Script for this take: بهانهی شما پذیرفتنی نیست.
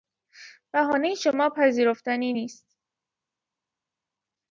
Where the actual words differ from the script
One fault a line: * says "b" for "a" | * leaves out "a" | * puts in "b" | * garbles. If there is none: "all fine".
all fine